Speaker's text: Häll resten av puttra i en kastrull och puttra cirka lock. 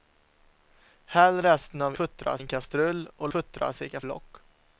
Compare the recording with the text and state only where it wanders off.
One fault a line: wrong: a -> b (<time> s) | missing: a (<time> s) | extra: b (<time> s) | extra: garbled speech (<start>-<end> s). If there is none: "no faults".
no faults